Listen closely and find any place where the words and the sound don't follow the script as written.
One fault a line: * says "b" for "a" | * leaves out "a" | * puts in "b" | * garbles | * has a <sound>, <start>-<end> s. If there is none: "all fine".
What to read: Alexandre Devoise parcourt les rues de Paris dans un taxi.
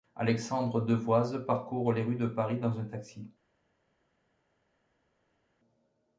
all fine